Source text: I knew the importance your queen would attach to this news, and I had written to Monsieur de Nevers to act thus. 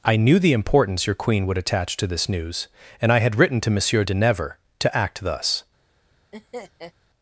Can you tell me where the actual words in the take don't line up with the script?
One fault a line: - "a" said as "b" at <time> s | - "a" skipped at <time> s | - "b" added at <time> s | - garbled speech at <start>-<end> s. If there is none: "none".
none